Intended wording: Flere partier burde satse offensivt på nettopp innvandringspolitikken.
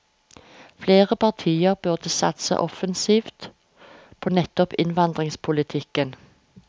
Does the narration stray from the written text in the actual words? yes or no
no